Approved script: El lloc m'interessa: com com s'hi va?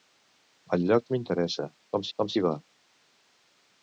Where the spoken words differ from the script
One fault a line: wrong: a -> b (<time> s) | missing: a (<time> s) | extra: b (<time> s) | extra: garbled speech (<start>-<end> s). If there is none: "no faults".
no faults